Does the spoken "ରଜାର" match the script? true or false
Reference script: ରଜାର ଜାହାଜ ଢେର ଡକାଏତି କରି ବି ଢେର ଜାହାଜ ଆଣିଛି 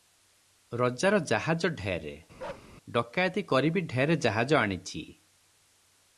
true